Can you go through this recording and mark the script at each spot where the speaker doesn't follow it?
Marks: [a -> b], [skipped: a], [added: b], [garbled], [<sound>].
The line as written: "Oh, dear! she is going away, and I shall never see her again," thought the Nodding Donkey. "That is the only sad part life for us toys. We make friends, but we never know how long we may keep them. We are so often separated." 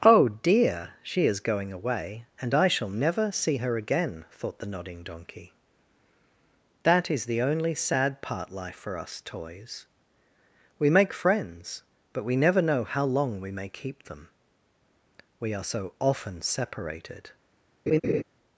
"Oh, dear! she is going away, and I shall never see her again," thought the Nodding Donkey. "That is the only sad part life for us toys. We make friends, but we never know how long we may keep them. We are so often separated." [laugh]